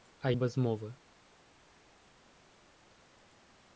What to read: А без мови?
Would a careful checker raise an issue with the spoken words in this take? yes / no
no